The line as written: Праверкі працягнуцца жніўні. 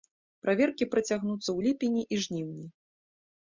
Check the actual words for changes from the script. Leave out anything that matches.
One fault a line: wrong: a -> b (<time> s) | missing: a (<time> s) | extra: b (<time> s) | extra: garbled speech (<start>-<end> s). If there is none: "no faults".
extra: ў ліпені і (1.4 s)